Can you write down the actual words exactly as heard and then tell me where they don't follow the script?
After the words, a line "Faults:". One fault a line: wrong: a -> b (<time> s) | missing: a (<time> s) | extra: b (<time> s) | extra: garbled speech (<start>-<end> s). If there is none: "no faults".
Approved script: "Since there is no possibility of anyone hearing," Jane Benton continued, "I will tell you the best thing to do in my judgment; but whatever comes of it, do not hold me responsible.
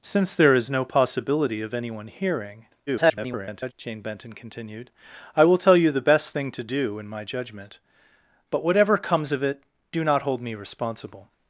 "Since there is no possibility of anyone hearing," [garbled] Jane Benton continued, "I will tell you the best thing to do in my judgment; but whatever comes of it, do not hold me responsible.
Faults:
extra: garbled speech (2.9-3.7 s)